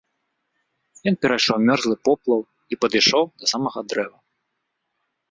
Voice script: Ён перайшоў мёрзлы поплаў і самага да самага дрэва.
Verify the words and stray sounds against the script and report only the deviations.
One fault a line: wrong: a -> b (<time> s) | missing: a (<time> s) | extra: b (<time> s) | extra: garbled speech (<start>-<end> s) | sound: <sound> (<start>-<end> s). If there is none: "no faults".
wrong: самага -> падышоў (2.9 s)